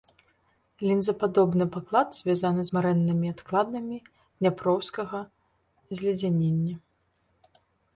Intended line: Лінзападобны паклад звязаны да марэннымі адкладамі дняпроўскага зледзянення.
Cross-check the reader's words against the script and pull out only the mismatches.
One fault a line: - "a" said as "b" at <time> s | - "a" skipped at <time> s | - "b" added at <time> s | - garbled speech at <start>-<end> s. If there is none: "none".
- "да" said as "з" at 2.7 s